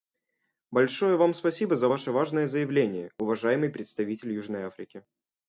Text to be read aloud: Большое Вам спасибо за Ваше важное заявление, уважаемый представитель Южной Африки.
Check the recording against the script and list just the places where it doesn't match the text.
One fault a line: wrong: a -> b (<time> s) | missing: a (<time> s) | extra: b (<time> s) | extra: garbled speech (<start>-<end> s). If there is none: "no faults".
no faults